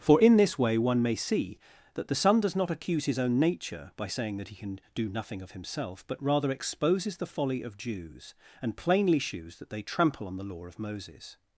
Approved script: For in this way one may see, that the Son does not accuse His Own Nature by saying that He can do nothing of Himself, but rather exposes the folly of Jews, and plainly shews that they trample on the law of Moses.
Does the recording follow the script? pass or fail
pass